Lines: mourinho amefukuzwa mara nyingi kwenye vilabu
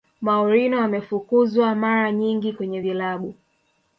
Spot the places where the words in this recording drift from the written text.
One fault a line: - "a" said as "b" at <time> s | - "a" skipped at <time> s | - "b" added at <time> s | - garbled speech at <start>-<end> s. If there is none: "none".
none